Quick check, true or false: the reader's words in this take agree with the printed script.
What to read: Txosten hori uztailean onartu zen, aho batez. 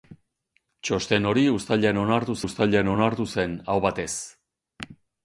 false